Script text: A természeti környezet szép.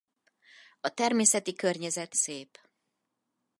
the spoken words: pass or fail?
pass